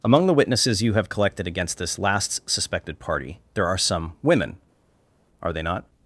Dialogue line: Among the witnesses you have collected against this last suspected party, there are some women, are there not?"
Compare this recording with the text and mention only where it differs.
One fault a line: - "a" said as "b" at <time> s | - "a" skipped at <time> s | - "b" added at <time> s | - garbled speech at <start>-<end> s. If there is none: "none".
- "there" said as "they" at 5.5 s